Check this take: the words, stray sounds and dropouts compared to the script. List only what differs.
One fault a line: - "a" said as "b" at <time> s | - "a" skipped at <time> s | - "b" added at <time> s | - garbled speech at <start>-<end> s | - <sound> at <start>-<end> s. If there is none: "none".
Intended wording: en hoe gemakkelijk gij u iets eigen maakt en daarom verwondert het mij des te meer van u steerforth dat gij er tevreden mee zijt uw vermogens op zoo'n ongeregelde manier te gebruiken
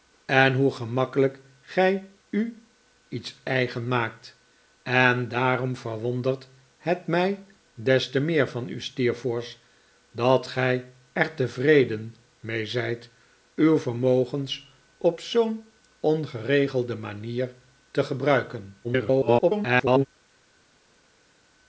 - garbled speech at 18.8-20.1 s